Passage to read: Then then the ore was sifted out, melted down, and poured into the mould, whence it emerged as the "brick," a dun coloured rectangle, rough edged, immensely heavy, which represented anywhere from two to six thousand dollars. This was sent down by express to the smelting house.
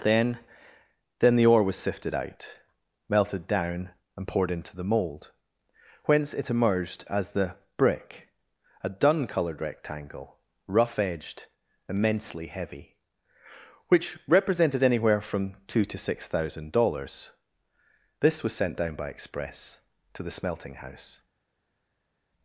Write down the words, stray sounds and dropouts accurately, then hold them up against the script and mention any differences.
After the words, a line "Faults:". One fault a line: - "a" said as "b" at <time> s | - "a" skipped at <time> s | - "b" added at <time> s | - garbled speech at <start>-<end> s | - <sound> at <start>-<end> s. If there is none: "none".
Then then the ore was sifted out, melted down, and poured into the mould, whence it emerged as the "brick," a dun coloured rectangle, rough edged, immensely heavy, which represented anywhere from two to six thousand dollars. This was sent down by express to the smelting house.
Faults:
none